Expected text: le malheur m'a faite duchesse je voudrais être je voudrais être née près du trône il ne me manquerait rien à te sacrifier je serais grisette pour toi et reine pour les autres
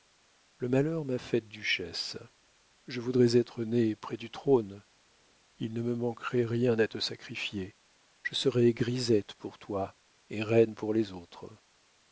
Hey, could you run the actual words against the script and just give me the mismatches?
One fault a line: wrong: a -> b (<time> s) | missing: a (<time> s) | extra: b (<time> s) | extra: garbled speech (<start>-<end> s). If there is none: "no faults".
missing: je voudrais être (3.6 s)